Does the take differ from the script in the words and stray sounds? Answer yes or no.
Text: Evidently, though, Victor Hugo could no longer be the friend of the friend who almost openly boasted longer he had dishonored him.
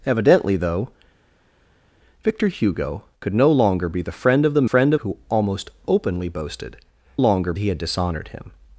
no